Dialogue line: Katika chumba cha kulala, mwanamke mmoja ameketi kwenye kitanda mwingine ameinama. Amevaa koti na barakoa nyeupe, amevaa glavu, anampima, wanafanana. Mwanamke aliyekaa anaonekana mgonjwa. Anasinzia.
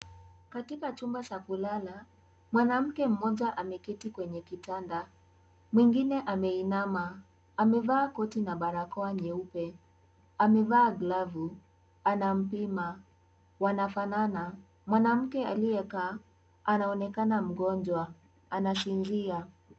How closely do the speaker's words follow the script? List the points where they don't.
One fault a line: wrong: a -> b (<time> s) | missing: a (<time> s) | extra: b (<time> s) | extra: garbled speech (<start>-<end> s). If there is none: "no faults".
no faults